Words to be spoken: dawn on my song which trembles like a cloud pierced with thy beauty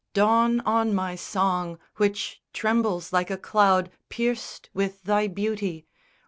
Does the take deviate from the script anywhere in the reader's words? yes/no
no